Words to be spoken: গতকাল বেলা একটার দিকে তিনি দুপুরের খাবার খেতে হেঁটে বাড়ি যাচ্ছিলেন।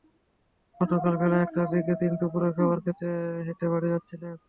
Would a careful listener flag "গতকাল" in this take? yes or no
no